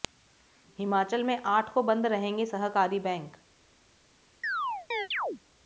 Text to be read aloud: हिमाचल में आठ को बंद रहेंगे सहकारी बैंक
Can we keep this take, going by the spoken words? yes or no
yes